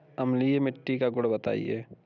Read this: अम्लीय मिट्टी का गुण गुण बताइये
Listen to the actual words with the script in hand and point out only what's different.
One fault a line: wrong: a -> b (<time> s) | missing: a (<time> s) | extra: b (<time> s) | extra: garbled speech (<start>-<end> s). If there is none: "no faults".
missing: गुण (1.3 s)